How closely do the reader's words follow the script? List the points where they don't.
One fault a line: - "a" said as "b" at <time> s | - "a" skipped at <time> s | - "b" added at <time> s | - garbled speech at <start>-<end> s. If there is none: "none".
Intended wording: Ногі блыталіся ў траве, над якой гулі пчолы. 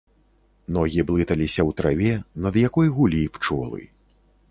none